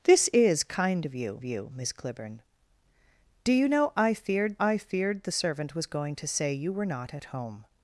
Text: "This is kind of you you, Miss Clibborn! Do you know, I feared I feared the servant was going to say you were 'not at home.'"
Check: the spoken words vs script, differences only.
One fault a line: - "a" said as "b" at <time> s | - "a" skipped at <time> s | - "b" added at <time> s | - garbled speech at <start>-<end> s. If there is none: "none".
none